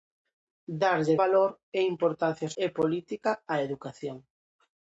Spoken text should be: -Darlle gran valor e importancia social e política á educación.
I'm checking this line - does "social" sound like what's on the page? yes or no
no